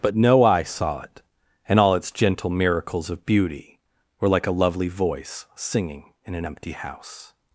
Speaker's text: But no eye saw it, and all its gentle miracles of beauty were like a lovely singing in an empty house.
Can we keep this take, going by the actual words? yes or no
no